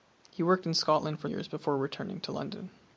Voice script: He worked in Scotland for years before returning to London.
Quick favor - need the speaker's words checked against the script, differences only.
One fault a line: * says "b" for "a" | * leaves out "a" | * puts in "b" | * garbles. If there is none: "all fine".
all fine